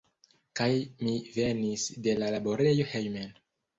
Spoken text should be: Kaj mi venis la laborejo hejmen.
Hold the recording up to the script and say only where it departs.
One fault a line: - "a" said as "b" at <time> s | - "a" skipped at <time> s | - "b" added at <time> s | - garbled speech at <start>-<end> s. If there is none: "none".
- "de" added at 2.1 s